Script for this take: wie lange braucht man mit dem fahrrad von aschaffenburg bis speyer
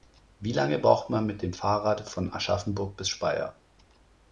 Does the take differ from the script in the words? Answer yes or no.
no